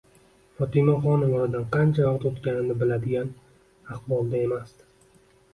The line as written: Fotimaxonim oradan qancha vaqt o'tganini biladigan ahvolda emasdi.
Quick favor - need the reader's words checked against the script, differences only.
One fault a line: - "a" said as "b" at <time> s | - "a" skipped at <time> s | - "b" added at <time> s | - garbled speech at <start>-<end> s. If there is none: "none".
none